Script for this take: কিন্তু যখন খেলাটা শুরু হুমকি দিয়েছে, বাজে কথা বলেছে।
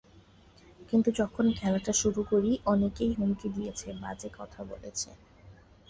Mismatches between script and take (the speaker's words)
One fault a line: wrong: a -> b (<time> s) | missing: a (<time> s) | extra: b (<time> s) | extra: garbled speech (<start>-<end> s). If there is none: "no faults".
extra: করি অনেকেই (2.3 s)